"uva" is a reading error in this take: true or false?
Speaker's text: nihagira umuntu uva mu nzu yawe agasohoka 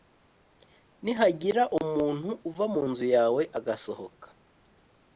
false